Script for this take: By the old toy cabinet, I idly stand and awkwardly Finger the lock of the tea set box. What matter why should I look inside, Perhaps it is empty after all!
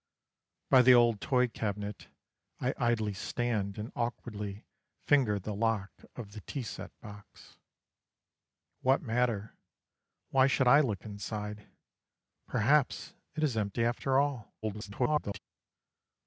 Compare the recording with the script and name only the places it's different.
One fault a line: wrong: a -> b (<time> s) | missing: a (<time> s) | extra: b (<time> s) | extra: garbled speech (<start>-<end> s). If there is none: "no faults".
extra: garbled speech (14.6-15.4 s)